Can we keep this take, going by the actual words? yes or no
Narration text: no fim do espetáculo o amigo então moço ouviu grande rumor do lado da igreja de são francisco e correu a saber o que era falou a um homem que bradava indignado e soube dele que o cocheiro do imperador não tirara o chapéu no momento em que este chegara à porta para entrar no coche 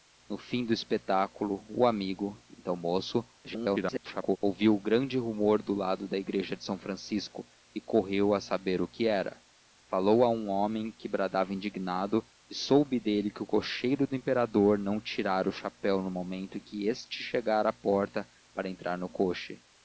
no